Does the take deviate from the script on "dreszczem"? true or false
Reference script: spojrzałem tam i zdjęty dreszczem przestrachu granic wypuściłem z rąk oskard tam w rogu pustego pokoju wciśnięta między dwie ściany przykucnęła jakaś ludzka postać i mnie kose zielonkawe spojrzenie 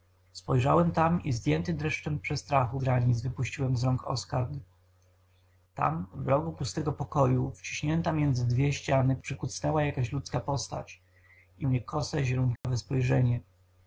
false